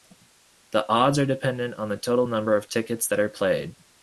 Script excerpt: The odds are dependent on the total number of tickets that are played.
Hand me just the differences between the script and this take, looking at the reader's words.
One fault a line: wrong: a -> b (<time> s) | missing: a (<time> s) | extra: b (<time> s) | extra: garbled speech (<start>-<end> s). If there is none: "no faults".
no faults